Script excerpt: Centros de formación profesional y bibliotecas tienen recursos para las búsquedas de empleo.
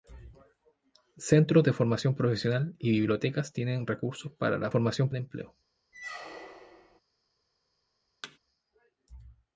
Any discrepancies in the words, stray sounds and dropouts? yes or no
yes